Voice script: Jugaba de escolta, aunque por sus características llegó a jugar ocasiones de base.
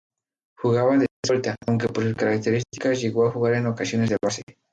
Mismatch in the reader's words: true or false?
true